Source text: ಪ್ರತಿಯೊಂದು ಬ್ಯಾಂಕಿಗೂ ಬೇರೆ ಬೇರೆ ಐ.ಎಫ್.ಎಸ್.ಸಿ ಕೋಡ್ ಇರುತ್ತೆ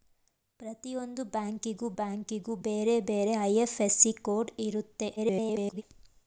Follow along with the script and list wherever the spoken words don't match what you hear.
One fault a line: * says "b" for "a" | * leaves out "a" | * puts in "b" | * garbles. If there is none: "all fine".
* puts in "ಬ್ಯಾಂಕಿಗೂ"
* garbles